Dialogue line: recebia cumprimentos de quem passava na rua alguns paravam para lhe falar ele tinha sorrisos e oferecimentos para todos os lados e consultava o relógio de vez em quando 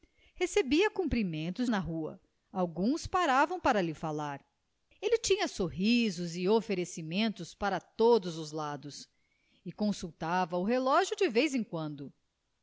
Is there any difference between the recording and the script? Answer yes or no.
yes